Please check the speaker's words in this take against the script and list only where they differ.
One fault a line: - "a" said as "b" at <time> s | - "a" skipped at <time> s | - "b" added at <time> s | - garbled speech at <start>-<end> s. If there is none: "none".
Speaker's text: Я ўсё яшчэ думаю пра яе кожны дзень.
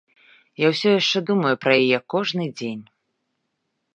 none